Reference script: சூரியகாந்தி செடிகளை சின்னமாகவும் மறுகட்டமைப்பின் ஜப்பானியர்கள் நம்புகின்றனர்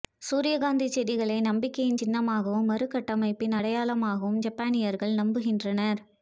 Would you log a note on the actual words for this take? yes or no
yes